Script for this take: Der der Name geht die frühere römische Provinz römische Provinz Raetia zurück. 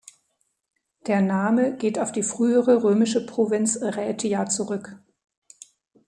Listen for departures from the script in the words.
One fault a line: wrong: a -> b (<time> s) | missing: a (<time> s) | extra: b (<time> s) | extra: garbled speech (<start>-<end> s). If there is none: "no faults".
missing: der (1.2 s)
extra: auf (2.0 s)
missing: römische Provinz (3.8 s)